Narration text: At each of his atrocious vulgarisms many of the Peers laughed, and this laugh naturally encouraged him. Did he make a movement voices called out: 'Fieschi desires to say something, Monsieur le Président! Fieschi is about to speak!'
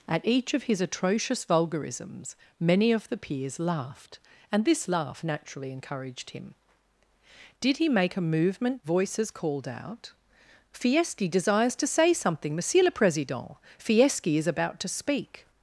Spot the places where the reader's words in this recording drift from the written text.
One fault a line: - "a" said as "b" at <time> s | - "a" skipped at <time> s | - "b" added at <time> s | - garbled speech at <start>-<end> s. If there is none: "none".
none